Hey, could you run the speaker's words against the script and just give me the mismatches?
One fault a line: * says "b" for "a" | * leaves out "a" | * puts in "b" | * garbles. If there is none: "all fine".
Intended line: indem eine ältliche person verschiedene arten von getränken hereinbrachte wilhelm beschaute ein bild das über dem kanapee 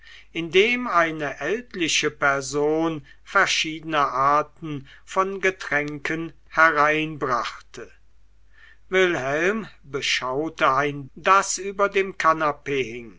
* leaves out "bild"